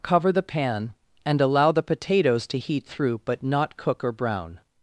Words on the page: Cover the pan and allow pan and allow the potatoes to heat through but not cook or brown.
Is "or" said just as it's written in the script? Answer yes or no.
yes